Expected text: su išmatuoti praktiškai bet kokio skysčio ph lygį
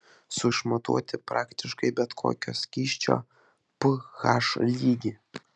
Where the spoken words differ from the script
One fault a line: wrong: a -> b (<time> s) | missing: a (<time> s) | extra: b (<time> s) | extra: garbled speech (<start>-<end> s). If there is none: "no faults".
no faults